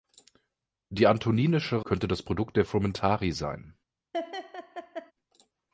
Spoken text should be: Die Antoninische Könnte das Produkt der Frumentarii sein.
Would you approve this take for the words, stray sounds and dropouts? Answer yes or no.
no